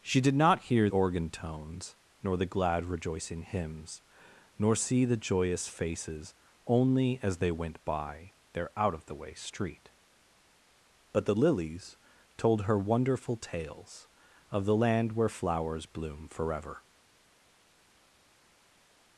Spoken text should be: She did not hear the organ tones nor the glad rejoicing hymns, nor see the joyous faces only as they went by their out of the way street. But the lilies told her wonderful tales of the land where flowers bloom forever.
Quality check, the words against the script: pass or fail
fail